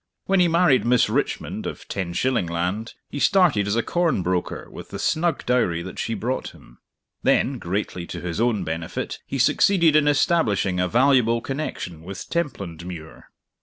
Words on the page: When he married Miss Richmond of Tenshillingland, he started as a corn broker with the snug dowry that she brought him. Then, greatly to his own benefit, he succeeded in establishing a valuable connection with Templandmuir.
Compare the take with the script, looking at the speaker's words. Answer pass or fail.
pass